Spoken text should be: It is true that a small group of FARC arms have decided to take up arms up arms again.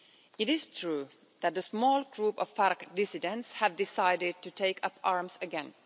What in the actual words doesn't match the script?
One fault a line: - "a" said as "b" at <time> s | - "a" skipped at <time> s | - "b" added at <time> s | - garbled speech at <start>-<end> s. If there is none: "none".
- "arms" said as "dissidents" at 2.9 s
- "up arms" skipped at 5.4 s